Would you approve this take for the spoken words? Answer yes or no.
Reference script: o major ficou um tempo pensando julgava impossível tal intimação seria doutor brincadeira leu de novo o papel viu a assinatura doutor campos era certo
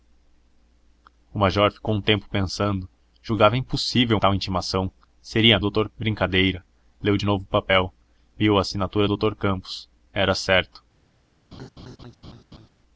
yes